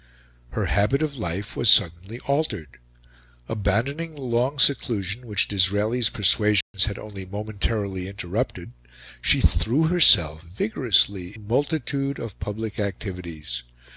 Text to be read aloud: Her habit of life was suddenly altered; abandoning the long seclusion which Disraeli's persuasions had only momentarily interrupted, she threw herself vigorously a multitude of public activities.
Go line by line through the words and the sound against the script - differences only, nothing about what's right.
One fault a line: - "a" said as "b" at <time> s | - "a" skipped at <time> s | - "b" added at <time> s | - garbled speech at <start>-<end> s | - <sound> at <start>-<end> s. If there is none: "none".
- dropout at 6.6-6.7 s